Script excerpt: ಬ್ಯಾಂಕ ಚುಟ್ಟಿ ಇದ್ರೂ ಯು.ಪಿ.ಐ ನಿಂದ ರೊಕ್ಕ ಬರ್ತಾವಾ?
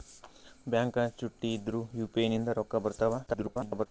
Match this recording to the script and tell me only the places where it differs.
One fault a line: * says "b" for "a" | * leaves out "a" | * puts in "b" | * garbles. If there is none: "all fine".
* garbles